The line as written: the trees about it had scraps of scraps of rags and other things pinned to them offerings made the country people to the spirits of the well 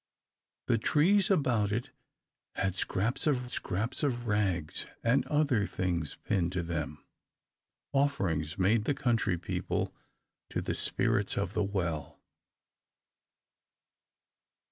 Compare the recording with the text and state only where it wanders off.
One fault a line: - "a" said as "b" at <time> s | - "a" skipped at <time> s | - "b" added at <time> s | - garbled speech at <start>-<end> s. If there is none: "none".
none